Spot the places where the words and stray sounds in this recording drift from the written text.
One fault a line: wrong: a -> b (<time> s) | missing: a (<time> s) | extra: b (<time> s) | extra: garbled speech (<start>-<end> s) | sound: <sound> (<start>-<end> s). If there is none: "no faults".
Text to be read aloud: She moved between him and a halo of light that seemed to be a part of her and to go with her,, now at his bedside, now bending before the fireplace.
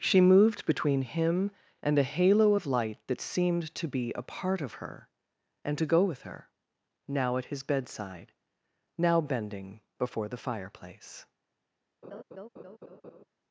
sound: laugh (12.0-13.3 s)